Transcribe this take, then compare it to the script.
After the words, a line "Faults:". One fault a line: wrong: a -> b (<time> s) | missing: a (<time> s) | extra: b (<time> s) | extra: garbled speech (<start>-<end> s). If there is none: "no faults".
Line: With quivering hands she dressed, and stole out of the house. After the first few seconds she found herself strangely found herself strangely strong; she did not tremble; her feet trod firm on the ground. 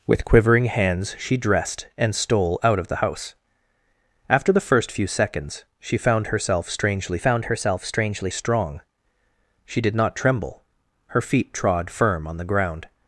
With quivering hands she dressed, and stole out of the house. After the first few seconds she found herself strangely found herself strangely strong; she did not tremble; her feet trod firm on the ground.
Faults:
no faults